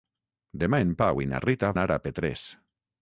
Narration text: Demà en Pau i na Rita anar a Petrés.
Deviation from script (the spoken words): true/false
false